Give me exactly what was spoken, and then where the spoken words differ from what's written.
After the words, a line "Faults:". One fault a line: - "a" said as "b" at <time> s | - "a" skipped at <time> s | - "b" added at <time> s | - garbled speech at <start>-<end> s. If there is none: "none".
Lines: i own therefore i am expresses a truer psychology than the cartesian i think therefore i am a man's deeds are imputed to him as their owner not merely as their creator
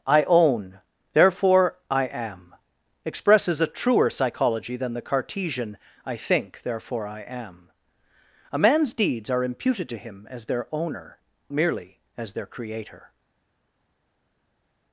i own therefore i am expresses a truer psychology than the cartesian i think therefore i am a man's deeds are imputed to him as their owner merely as their creator
Faults:
- "not" skipped at 11.2 s